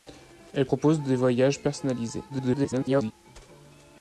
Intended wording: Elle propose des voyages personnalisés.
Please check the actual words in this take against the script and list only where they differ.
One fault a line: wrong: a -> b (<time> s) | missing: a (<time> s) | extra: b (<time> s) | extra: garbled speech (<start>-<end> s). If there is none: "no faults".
extra: garbled speech (2.3-3.1 s)